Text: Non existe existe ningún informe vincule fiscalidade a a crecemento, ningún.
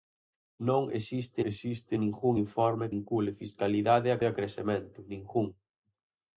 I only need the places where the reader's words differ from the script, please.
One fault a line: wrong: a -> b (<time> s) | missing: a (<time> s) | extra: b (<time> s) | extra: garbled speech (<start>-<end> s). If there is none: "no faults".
no faults